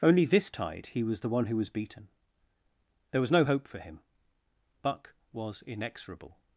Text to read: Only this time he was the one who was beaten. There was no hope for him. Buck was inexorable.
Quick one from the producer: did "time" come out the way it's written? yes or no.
no